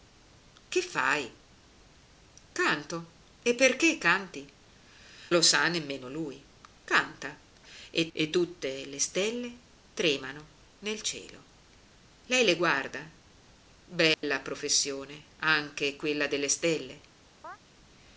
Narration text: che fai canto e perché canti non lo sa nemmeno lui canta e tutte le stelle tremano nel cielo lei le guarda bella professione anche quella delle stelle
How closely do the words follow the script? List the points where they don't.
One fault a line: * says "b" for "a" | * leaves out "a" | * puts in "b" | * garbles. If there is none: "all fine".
* leaves out "non"
* puts in "e"